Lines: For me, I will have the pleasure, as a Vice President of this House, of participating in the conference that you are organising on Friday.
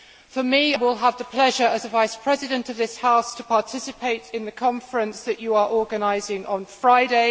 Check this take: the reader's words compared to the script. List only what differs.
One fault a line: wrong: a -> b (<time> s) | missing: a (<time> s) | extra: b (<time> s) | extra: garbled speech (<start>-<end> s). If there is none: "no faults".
missing: I (0.7 s)